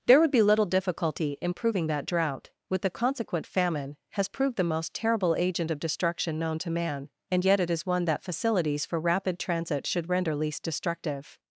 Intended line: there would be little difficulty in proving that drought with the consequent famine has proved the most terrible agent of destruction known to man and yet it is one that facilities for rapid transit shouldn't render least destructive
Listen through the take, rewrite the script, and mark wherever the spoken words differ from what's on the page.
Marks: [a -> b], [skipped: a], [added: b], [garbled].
there would be little difficulty in proving that drought with the consequent famine has proved the most terrible agent of destruction known to man and yet it is one that facilities for rapid transit [shouldn't -> should] render least destructive